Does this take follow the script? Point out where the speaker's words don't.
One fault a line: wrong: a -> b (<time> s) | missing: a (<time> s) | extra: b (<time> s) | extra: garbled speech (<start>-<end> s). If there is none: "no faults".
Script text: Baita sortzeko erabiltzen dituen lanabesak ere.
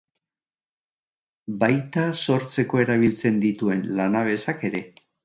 no faults